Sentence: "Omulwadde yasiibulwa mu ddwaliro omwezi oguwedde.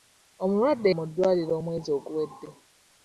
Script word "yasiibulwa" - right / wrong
wrong